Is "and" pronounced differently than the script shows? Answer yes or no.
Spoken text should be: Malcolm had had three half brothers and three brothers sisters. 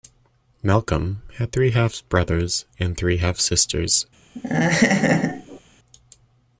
no